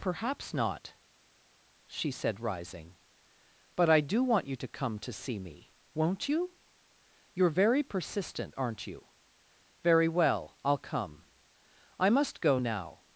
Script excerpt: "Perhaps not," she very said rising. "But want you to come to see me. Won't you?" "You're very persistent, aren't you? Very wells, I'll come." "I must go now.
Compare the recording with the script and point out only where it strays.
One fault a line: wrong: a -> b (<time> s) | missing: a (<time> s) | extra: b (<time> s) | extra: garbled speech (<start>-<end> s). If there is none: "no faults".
missing: very (2.1 s)
extra: I do (3.9 s)
wrong: wells -> well (10.1 s)